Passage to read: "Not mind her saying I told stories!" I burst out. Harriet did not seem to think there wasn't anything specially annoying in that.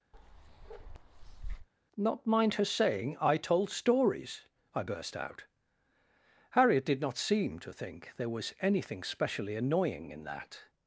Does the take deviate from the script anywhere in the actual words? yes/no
yes